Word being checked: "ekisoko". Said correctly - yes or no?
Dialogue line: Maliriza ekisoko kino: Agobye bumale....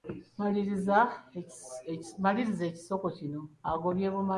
yes